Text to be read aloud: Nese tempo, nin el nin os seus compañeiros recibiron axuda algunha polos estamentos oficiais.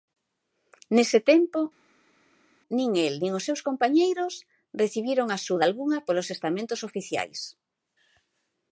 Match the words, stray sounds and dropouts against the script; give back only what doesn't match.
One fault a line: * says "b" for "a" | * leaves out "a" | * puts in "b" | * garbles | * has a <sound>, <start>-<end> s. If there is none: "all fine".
all fine